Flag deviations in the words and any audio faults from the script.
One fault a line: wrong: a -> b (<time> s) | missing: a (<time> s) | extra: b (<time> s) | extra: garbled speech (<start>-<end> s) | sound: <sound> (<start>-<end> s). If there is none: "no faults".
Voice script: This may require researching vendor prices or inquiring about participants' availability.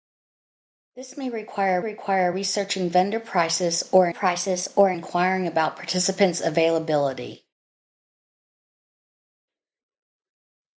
extra: require (1.8 s)
extra: prices or (4.1 s)